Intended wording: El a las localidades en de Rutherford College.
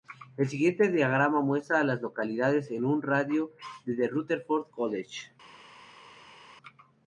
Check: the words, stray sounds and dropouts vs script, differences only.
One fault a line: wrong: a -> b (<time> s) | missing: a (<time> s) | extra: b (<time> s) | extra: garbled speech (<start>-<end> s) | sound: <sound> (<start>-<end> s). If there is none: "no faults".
extra: siguiente diagrama muestra (0.5 s)
extra: un radio de (2.9 s)